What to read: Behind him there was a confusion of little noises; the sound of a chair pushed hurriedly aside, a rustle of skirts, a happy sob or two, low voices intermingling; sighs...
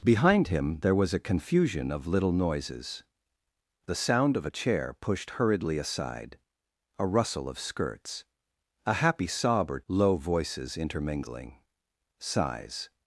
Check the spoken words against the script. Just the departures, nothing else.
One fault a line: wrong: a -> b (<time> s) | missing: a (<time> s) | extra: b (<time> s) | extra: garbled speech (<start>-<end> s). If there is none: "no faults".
missing: two (9.8 s)